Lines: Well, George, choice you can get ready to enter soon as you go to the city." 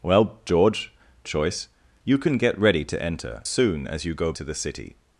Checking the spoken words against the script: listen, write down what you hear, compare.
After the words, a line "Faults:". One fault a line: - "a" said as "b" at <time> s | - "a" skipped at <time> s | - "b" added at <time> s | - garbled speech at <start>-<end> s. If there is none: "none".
Well, George, choice you can get ready to enter soon as you go to the city."
Faults:
none